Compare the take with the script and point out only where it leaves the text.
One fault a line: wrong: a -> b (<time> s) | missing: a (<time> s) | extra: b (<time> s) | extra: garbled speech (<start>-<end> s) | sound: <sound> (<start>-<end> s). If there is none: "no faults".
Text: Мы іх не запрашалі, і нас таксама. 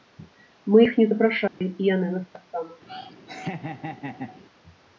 sound: dropout (1.5-1.6 s)
extra: яны (1.9 s)
sound: laugh (2.9-4.4 s)